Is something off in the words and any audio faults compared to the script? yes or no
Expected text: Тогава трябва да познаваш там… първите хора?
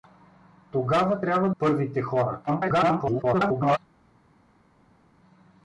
yes